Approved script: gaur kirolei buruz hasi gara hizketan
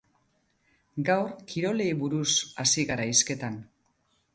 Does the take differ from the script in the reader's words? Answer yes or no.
no